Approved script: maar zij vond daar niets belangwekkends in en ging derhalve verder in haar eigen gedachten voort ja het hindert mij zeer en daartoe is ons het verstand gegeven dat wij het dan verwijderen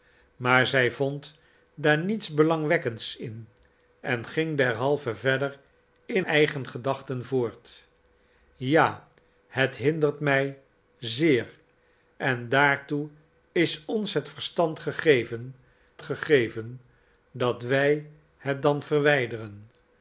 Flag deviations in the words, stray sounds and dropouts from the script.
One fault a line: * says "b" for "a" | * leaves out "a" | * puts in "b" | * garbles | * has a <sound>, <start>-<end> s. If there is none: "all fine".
* leaves out "haar"
* puts in "gegeven"